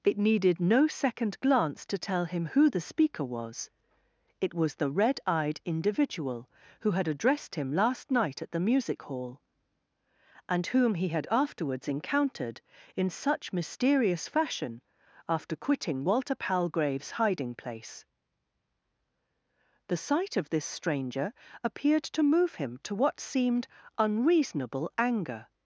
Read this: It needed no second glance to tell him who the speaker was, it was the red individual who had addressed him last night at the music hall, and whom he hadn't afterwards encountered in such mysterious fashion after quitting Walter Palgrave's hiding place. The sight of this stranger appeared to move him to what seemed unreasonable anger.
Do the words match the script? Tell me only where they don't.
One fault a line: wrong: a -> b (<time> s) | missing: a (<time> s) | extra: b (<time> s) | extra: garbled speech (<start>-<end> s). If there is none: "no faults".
extra: eyed (5.3 s)
wrong: hadn't -> had (11.1 s)